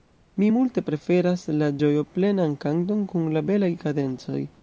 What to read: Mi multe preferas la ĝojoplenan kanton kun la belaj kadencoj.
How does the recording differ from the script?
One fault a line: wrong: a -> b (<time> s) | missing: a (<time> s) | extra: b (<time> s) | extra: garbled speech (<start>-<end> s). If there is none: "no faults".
no faults